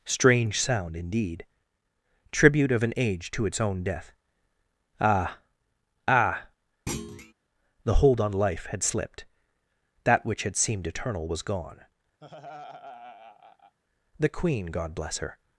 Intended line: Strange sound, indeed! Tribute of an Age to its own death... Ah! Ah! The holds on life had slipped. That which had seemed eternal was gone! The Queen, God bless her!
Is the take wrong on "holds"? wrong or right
wrong